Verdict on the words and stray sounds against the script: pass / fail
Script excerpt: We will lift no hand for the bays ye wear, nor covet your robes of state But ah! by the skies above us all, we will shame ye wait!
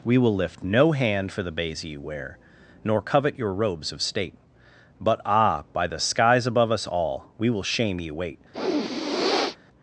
fail